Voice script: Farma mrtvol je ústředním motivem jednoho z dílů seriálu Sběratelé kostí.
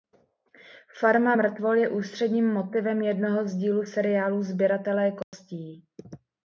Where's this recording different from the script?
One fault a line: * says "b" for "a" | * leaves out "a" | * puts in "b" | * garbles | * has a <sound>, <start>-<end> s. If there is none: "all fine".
* has a dropout, 5.2-5.3 s